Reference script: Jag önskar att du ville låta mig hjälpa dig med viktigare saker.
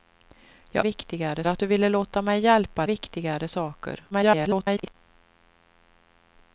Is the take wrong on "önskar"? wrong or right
wrong